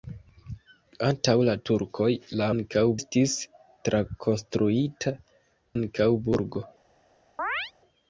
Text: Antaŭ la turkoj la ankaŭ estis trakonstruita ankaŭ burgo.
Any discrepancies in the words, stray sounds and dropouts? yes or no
yes